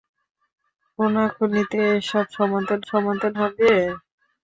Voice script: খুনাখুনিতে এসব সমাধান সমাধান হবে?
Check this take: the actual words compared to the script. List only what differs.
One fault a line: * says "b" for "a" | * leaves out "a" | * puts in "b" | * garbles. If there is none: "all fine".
all fine